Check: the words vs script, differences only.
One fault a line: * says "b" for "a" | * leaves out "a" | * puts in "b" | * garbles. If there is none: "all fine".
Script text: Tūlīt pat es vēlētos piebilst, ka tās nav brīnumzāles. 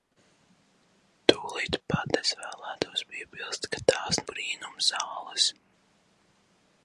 * leaves out "nav"